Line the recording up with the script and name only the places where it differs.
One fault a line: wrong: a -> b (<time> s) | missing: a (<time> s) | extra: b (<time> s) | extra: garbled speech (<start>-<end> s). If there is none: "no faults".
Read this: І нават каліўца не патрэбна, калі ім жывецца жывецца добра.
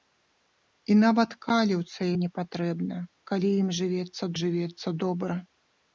no faults